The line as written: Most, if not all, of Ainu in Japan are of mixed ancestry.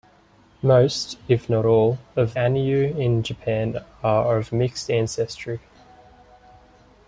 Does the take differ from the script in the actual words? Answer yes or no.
no